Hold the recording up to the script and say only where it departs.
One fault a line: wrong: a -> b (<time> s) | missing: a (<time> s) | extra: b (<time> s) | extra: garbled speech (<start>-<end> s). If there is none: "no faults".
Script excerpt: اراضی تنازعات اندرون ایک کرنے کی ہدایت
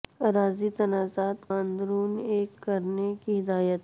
no faults